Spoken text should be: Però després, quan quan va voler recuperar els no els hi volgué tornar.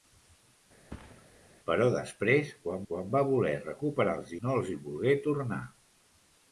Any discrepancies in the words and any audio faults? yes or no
yes